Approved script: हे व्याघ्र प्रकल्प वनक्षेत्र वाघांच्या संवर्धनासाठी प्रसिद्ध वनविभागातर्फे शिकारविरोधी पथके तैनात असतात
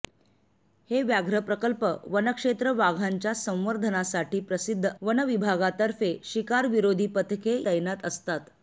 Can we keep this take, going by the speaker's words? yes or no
yes